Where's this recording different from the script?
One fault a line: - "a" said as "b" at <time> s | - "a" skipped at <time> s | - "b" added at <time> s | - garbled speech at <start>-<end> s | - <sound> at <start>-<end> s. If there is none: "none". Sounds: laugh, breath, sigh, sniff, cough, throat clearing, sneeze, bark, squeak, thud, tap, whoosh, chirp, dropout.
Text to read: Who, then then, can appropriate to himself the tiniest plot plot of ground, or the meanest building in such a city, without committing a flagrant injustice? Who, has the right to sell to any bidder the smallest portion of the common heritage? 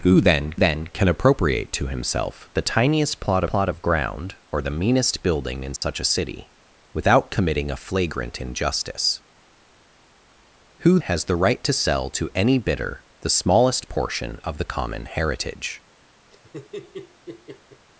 - dropout at 5.8-5.8 s
- laugh at 16.3-17.9 s